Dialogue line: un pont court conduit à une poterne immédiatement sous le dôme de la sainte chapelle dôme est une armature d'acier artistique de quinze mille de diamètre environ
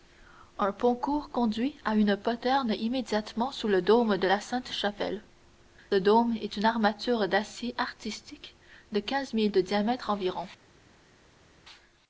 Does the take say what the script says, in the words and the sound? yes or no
yes